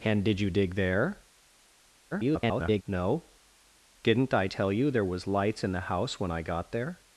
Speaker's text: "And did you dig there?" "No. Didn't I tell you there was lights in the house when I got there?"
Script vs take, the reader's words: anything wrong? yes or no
yes